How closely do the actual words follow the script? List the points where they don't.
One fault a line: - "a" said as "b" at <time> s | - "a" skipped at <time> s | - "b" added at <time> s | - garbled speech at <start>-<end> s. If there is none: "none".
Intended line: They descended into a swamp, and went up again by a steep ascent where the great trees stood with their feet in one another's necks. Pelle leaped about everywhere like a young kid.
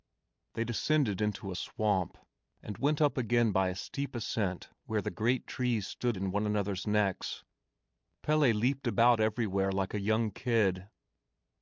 - "with their feet" skipped at 6.2 s